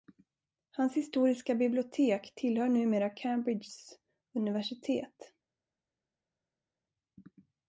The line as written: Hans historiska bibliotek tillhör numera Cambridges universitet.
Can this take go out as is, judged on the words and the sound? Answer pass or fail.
pass